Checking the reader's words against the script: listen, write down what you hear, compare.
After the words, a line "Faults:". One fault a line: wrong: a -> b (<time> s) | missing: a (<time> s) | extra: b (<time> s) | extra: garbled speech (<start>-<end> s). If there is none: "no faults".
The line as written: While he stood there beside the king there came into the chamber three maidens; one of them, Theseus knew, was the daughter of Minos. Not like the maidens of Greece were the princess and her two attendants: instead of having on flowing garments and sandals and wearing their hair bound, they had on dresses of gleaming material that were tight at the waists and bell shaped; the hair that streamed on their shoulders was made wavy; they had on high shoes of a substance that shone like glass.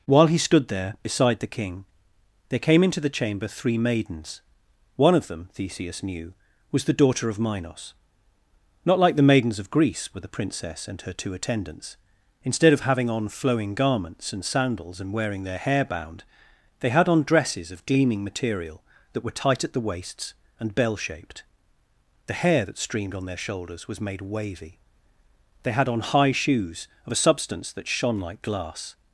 While he stood there beside the king there came into the chamber three maidens; one of them, Theseus knew, was the daughter of Minos. Not like the maidens of Greece were the princess and her two attendants: instead of having on flowing garments and sandals and wearing their hair bound, they had on dresses of gleaming material that were tight at the waists and bell shaped; the hair that streamed on their shoulders was made wavy; they had on high shoes of a substance that shone like glass.
Faults:
no faults